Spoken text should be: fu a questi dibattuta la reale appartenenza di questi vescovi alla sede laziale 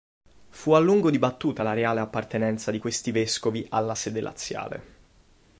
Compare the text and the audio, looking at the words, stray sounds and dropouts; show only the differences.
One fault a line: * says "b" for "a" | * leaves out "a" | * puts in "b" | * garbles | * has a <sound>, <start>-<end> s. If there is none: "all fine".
* says "lungo" for "questi"